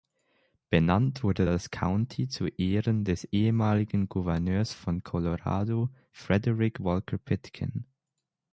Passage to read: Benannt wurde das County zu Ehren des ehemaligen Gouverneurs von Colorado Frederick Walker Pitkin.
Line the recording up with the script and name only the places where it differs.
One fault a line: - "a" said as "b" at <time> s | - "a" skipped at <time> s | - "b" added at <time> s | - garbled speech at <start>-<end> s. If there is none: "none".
none